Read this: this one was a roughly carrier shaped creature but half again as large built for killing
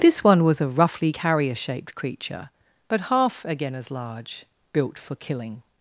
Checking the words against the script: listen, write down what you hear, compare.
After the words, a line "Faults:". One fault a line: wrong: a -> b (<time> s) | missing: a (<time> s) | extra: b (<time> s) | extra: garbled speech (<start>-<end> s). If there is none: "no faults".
this one was a roughly carrier shaped creature but half again as large built for killing
Faults:
no faults